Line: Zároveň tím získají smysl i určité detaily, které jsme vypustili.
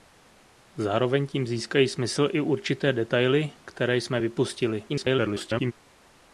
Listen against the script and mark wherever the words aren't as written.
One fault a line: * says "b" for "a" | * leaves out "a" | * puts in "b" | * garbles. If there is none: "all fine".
* garbles